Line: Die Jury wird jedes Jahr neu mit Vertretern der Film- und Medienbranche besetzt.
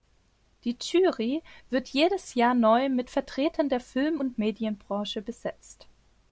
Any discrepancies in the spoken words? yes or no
no